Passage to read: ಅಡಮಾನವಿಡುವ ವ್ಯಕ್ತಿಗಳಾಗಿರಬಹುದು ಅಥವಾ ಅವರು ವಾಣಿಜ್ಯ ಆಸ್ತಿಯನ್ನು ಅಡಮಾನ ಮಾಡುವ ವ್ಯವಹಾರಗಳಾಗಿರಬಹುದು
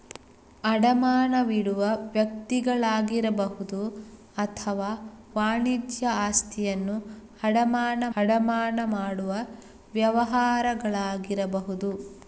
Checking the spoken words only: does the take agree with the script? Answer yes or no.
no